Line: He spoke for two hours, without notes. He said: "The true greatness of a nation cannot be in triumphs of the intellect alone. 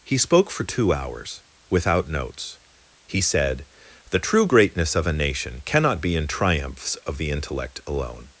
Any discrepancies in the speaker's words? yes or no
no